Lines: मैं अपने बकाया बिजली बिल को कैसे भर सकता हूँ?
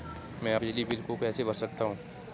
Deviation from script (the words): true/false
true